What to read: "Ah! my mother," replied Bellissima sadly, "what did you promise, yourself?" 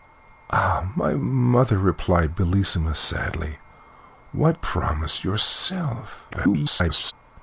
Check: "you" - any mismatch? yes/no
yes